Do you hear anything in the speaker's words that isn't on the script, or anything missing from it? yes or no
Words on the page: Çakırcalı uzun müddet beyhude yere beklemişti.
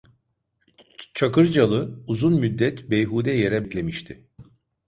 no